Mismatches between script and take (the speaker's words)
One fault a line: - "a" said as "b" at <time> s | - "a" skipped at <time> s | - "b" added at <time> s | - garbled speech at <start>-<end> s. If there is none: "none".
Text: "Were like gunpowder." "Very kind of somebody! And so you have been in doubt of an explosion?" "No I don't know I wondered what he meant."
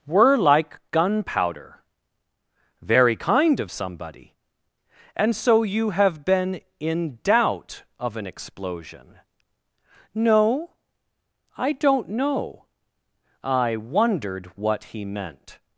none